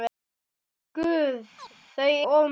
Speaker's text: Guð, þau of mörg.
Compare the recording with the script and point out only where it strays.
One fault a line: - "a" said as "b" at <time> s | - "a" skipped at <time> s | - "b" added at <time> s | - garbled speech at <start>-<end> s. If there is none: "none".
none